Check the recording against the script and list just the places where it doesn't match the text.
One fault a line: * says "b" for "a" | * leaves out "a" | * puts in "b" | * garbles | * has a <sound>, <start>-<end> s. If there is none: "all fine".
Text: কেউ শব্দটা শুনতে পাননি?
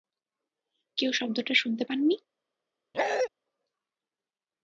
* has a bark, 2.9-3.3 s